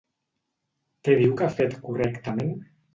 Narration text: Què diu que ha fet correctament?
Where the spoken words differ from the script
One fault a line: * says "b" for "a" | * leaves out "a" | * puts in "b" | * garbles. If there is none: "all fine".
all fine